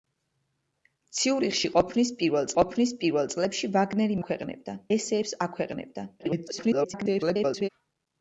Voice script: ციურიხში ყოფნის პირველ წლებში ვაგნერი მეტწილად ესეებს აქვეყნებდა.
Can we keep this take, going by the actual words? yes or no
no